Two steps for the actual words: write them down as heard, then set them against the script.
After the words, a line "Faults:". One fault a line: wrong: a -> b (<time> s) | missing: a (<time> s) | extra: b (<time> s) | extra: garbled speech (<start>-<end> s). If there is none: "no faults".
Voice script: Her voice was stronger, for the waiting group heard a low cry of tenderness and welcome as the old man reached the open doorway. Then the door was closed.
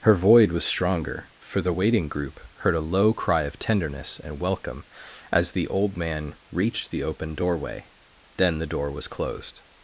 Her void was stronger, for the waiting group heard a low cry of tenderness and welcome as the old man reached the open doorway. Then the door was closed.
Faults:
wrong: voice -> void (0.1 s)